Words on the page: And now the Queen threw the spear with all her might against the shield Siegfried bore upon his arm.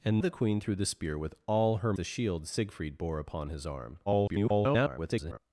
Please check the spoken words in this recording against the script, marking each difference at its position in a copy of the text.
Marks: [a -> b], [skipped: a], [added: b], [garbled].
And [skipped: now] the Queen threw the spear with all her [skipped: might against] the shield Siegfried bore upon his arm. [garbled]